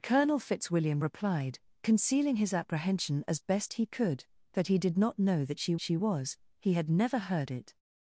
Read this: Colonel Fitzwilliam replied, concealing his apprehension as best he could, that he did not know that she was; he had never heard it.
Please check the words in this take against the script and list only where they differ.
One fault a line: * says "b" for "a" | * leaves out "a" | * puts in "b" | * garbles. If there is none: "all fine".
* puts in "she"